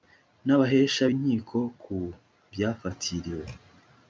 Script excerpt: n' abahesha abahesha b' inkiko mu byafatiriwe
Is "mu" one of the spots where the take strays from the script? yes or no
yes